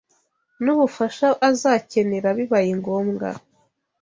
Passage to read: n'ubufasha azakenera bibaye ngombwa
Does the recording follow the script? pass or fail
pass